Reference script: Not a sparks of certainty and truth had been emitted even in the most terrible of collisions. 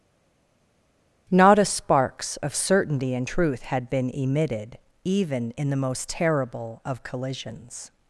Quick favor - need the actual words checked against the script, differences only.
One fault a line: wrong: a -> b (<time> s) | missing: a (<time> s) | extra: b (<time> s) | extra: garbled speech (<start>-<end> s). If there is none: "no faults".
no faults